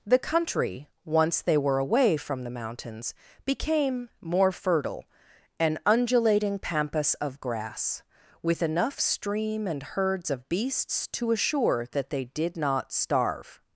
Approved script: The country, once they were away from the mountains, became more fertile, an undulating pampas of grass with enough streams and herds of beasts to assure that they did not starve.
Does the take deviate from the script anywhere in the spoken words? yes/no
yes